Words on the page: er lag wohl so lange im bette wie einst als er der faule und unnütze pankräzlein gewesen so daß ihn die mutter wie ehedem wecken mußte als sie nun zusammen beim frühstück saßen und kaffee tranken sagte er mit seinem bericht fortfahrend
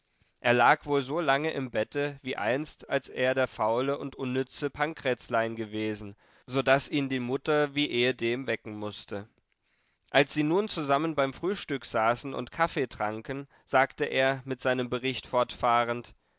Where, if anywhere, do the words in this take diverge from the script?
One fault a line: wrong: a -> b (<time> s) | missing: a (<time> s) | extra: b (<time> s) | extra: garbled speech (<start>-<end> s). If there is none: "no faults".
no faults